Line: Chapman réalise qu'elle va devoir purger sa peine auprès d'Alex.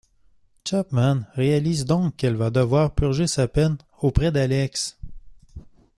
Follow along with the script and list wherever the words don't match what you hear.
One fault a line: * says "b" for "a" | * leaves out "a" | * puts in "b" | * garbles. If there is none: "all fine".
* puts in "donc"